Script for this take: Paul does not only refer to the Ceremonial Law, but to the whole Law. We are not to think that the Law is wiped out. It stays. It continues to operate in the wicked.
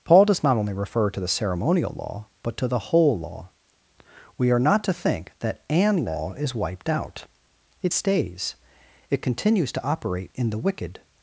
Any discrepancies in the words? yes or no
yes